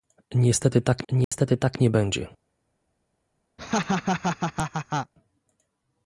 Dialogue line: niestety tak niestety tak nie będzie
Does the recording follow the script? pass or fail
pass